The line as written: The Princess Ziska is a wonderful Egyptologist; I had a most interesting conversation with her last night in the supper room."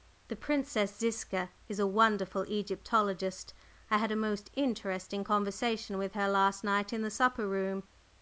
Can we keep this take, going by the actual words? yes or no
yes